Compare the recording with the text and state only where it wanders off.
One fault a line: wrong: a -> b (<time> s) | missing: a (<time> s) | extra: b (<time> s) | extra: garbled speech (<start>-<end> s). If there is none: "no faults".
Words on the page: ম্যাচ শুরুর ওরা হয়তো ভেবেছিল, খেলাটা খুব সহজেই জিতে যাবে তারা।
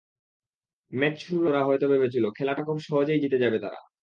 no faults